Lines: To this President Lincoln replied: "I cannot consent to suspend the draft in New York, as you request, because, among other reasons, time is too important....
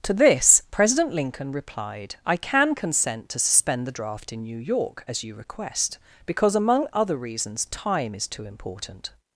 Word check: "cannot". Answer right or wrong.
wrong